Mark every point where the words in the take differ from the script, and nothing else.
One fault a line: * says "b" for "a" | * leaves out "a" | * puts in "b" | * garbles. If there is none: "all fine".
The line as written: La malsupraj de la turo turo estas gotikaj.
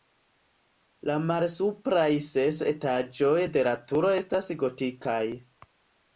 * puts in "ses etaĝoj"
* leaves out "turo"